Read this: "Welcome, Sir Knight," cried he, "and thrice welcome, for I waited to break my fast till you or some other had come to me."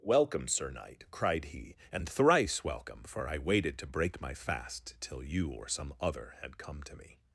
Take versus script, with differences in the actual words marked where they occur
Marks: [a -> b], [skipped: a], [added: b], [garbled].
"Welcome, Sir Knight," cried he, "and thrice welcome, for I waited to break my fast till you or some other had come to me."